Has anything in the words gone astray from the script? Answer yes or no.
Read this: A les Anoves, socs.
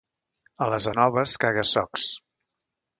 yes